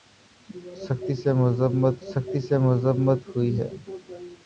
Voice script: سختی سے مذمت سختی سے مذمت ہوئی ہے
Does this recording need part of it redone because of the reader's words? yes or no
no